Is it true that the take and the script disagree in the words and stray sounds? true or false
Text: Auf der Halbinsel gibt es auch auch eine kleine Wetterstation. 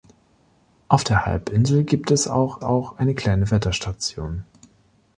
false